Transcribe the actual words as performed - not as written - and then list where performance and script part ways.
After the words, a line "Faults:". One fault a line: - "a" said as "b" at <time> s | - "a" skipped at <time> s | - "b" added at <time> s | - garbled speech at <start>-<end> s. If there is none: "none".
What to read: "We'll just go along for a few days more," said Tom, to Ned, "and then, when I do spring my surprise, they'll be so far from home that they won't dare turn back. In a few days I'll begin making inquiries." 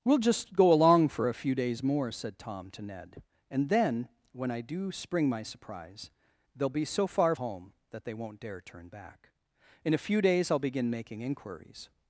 "We'll just go along for a few days more," said Tom, to Ned, "and then, when I do spring my surprise, they'll be so far home that they won't dare turn back. In a few days I'll begin making inquiries."
Faults:
- "from" skipped at 7.3 s